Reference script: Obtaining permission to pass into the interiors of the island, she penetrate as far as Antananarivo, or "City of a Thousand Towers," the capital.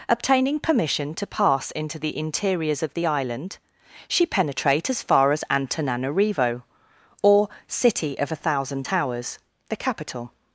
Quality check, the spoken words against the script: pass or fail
pass